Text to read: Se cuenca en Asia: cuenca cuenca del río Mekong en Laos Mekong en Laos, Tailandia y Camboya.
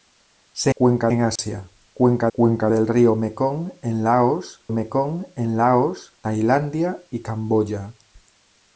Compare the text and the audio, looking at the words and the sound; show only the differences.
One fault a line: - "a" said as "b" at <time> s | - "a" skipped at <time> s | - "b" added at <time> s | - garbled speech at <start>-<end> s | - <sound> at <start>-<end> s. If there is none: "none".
- dropout at 1.4-1.4 s